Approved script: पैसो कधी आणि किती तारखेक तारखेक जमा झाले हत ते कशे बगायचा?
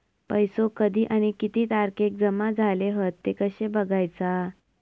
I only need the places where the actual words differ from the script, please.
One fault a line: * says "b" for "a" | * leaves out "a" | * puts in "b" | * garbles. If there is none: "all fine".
* leaves out "तारखेक"